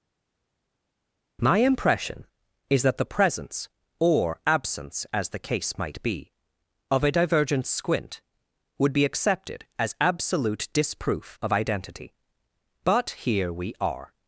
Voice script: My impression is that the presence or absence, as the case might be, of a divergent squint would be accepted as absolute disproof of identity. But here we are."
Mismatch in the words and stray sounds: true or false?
false